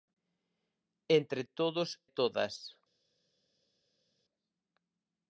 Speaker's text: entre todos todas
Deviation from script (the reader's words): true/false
false